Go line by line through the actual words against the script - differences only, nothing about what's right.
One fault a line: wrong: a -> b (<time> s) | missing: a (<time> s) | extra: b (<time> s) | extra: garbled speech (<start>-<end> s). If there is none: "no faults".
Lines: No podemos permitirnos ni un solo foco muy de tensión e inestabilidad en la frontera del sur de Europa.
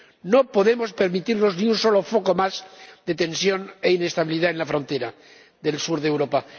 wrong: muy -> más (2.4 s)